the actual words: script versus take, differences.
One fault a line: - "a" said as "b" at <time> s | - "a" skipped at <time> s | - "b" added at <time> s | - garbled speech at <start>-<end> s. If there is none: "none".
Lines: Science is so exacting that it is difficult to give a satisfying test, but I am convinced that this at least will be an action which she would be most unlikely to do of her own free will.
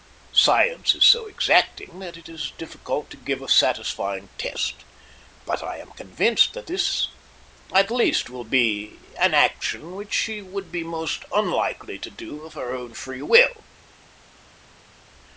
none